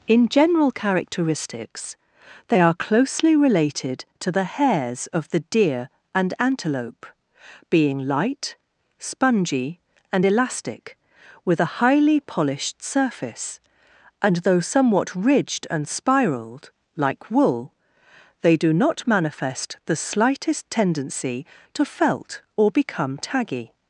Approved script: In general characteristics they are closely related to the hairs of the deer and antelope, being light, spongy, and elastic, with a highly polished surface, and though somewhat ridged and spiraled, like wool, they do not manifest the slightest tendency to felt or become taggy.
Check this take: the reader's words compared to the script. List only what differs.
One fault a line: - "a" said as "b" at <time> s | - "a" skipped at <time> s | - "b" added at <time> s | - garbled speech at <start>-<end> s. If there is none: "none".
none